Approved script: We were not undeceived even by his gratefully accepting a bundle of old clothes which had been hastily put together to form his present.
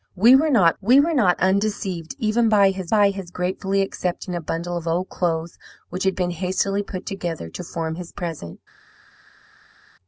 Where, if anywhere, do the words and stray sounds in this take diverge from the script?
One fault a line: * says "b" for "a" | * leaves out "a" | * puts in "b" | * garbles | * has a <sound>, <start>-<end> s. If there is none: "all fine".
* puts in "we were not"
* puts in "by his"